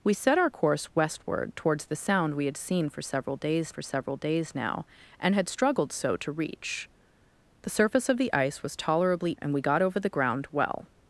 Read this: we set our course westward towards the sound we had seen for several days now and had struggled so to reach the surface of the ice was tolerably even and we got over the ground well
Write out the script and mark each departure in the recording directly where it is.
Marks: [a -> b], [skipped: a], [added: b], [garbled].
we set our course westward towards the sound we had seen for several days [added: for several days] now and had struggled so to reach the surface of the ice was tolerably [skipped: even] and we got over the ground well